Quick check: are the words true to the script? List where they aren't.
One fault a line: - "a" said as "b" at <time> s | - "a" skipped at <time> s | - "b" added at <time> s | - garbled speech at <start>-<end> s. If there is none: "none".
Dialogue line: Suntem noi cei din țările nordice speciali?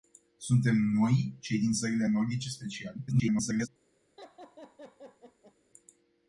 - garbled speech at 3.1-3.7 s